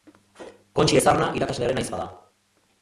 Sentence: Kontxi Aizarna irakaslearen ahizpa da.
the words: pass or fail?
pass